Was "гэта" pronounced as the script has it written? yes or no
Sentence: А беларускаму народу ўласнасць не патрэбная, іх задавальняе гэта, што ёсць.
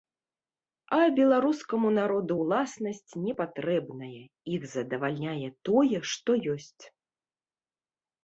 no